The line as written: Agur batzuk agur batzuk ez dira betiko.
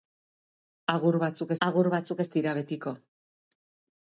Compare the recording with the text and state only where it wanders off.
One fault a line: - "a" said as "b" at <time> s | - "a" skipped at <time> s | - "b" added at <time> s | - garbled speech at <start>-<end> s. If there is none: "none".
none